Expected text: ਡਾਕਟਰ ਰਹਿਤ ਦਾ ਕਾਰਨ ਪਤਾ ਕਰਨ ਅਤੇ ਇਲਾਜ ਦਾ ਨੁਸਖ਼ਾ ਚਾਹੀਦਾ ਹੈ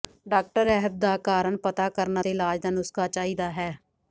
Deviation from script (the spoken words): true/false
false